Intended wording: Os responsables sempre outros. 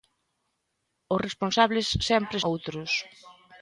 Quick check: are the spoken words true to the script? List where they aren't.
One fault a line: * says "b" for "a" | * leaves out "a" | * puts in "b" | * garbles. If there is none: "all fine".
all fine